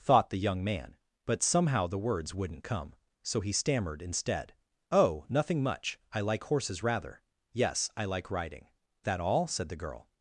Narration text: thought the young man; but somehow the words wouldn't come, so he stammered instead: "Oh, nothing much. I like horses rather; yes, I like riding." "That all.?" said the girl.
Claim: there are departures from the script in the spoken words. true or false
false